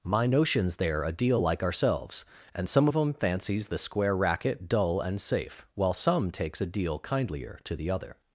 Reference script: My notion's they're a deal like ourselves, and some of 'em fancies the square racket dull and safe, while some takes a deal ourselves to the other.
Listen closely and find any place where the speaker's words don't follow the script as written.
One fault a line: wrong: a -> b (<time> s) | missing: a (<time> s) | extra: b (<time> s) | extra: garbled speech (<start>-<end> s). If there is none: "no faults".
wrong: ourselves -> kindlier (7.0 s)